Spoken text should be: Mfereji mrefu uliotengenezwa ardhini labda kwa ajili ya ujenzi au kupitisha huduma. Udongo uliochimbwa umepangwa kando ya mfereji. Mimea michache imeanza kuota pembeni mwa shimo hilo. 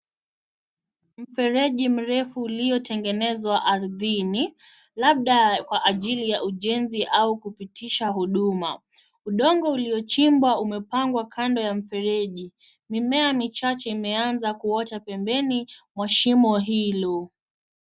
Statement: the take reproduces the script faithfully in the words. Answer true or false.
true